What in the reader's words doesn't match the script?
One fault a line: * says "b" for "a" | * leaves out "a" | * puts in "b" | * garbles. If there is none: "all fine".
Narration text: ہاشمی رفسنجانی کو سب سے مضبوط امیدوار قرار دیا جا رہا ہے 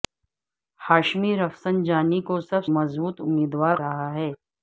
* leaves out "سے"
* leaves out "قرار دیا جا"